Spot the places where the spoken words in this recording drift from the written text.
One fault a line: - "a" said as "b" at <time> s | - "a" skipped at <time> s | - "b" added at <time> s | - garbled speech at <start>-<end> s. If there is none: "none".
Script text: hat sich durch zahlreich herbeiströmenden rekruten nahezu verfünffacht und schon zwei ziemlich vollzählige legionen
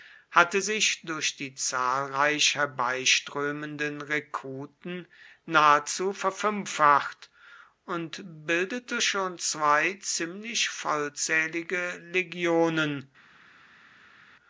- "hat" said as "hatte" at 0.3 s
- "die" added at 1.4 s
- "bildete" added at 8.5 s